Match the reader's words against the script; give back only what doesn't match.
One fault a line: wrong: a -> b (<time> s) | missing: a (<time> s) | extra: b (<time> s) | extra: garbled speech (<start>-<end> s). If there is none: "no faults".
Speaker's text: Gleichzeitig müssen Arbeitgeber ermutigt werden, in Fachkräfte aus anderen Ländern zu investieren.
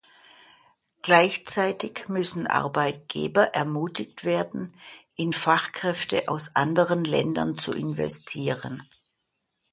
no faults